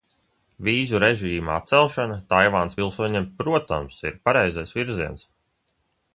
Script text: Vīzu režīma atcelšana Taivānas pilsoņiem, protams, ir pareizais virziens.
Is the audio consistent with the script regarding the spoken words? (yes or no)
yes